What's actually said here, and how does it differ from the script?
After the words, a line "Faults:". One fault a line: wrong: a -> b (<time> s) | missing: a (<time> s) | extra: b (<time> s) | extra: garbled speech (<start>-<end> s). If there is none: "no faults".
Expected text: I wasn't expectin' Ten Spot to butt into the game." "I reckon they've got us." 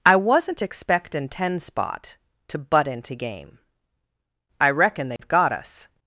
I wasn't expectin' Ten Spot to butt into game." "I reckon they've got us."
Faults:
missing: the (3.2 s)